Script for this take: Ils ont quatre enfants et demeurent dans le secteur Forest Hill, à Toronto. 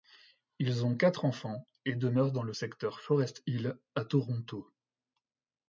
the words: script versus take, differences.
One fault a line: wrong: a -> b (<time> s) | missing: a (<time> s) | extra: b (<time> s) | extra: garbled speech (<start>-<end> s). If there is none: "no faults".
no faults